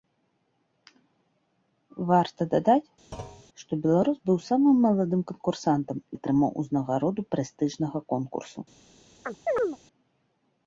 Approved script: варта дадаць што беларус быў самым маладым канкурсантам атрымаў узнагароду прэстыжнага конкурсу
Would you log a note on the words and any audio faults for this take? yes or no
yes